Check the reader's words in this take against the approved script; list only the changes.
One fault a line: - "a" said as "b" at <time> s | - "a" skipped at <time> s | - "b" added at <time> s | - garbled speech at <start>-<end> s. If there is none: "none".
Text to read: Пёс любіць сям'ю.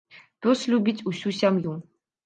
- "усю" added at 1.1 s